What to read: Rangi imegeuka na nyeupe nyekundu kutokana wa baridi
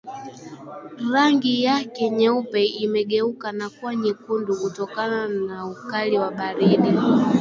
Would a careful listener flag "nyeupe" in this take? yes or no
yes